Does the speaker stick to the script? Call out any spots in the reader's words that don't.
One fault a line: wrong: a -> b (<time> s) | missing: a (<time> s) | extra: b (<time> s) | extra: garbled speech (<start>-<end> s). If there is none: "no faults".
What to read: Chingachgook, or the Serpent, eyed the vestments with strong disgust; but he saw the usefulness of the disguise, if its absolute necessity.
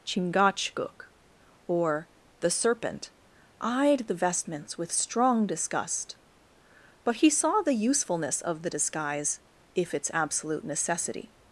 no faults